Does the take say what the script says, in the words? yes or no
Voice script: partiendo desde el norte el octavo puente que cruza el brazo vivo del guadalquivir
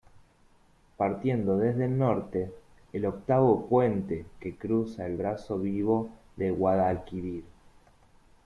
yes